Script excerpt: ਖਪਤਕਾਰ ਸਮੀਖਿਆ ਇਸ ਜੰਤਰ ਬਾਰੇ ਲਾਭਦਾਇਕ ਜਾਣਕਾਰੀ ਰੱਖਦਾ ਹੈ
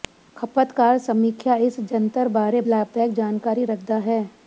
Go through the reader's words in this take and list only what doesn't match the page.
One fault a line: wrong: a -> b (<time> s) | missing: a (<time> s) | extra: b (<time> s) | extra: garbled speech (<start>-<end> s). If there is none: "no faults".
no faults